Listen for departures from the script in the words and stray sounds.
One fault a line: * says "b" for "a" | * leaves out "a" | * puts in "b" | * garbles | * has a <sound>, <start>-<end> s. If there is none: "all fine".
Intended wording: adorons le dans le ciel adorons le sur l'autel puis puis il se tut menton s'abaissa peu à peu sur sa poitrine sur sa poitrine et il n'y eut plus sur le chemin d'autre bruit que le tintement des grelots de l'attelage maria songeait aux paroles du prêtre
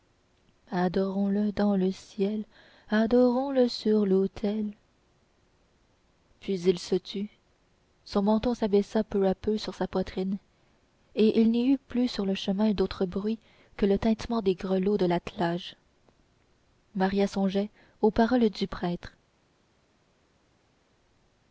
* leaves out "puis"
* puts in "son"
* leaves out "sur sa poitrine"